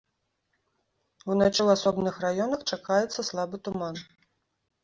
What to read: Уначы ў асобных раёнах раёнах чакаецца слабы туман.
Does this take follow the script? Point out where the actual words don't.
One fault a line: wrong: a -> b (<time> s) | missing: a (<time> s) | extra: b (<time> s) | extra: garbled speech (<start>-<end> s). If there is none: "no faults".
missing: раёнах (2.6 s)